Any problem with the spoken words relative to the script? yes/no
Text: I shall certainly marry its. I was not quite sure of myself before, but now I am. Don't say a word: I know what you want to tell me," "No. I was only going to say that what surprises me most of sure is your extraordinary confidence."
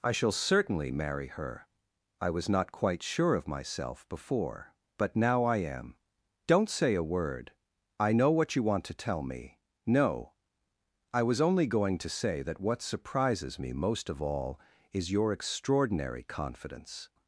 yes